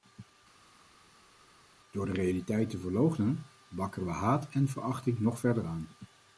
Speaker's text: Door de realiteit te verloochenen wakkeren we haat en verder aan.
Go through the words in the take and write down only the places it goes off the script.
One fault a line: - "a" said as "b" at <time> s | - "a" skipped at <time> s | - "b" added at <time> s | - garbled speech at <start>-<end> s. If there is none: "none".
- "verachting nog" added at 4.7 s